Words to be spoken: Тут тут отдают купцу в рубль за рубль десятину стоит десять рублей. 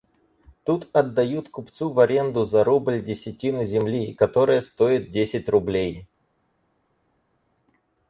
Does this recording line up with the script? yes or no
no